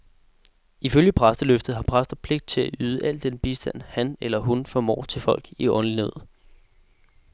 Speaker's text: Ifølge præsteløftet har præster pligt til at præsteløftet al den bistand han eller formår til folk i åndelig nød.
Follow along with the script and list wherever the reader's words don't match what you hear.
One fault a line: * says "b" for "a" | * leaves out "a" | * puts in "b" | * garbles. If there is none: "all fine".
* says "yde" for "præsteløftet"
* puts in "hun"